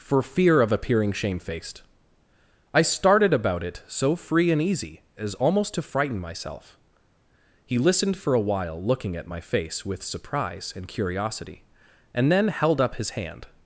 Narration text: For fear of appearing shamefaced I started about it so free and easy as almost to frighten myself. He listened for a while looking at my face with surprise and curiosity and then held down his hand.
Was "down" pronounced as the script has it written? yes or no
no